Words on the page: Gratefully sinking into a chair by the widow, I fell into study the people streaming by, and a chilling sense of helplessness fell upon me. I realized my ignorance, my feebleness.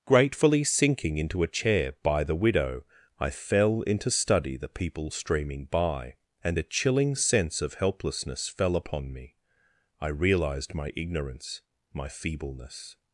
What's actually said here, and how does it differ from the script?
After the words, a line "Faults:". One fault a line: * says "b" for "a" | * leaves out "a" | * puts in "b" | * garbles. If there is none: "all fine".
Gratefully sinking into a chair by the widow, I fell into study the people streaming by, and a chilling sense of helplessness fell upon me. I realized my ignorance, my feebleness.
Faults:
all fine